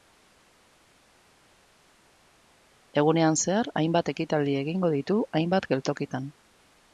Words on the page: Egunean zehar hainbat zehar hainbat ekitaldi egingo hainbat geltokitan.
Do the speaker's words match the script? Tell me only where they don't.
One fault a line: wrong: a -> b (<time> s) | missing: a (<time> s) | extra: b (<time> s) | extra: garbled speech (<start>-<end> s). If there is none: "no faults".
missing: zehar hainbat (4.1 s)
extra: ditu (5.0 s)